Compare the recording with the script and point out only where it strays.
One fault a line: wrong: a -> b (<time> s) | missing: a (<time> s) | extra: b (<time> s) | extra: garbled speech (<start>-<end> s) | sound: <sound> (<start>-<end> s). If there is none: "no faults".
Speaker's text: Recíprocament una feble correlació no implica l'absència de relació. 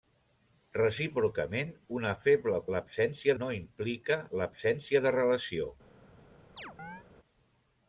wrong: correlació -> l'absència (2.8 s)
sound: chirp (6.6-7.0 s)